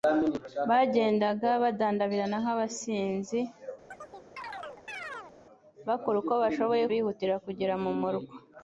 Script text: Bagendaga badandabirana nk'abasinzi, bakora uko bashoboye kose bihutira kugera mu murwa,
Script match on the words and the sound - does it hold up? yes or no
no